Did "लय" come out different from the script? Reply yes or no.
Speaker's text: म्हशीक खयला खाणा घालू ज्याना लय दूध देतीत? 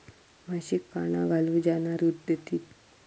yes